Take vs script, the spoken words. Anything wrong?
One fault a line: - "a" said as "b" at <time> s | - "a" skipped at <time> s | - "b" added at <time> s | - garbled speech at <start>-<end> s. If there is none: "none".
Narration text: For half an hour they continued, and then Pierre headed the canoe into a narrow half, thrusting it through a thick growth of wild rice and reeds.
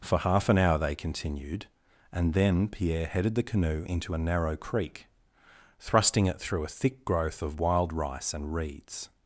- "half" said as "creek" at 4.6 s